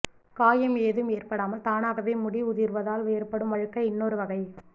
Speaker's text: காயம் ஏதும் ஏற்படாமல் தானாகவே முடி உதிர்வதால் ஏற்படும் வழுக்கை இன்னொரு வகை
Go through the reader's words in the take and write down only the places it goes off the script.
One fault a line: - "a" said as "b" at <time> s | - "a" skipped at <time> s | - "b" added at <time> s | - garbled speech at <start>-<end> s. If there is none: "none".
none